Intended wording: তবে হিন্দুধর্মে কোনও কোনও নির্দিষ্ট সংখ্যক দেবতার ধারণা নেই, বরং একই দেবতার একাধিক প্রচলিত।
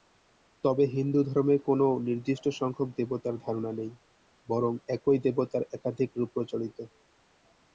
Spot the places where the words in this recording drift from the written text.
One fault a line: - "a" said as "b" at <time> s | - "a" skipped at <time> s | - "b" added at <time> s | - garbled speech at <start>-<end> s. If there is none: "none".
- "কোনও" skipped at 1.9 s
- "রূপ" added at 6.2 s